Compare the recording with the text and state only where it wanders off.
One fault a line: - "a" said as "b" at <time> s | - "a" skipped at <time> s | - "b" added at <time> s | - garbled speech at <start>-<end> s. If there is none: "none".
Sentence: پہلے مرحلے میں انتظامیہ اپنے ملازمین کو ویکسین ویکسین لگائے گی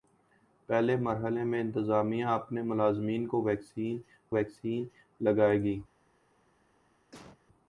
none